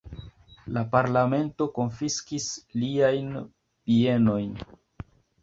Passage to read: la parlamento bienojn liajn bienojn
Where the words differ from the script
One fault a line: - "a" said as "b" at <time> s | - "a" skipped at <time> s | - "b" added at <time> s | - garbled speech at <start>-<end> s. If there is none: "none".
- "bienojn" said as "konfiskis" at 1.8 s